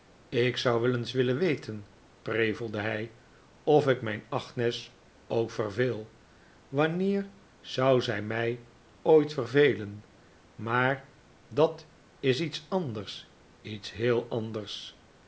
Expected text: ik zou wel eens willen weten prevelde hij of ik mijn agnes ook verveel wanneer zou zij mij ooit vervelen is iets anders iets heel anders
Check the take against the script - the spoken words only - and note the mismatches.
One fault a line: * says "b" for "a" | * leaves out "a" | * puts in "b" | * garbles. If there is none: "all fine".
* puts in "maar dat"